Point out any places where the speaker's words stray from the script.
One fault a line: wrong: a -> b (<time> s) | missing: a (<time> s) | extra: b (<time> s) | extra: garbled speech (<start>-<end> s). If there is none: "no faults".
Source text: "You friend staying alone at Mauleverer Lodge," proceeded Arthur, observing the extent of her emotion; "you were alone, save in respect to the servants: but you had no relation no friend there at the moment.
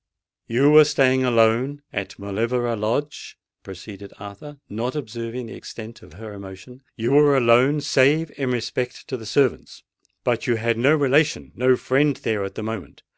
wrong: friend -> were (0.7 s)
extra: not (4.7 s)